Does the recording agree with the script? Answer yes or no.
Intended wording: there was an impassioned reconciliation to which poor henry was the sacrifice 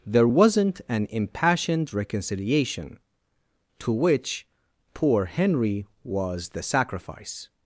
no